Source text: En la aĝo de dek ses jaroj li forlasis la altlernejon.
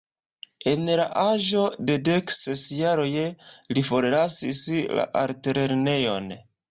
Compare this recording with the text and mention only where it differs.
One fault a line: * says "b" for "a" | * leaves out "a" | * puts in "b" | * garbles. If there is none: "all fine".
all fine